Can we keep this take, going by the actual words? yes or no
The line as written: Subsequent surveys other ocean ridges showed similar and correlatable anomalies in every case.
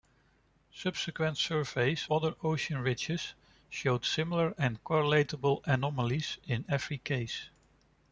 yes